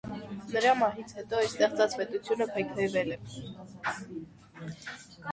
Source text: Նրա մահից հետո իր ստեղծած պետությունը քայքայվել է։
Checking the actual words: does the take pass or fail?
pass